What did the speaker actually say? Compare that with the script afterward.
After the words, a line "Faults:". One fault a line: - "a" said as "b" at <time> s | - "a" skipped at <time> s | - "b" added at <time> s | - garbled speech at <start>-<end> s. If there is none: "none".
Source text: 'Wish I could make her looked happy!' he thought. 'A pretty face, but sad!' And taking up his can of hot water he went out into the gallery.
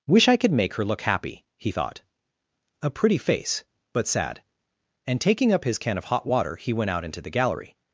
'Wish I could make her look happy!' he thought. 'A pretty face, but sad!' And taking up his can of hot water he went out into the gallery.
Faults:
- "looked" said as "look" at 0.8 s